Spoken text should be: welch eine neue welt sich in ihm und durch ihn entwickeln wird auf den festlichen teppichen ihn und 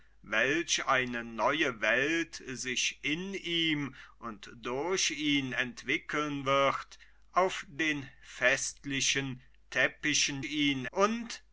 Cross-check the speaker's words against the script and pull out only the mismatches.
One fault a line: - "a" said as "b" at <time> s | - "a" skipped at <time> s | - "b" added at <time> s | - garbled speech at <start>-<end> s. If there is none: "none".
none